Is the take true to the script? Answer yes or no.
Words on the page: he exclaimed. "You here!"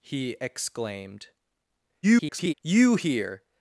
no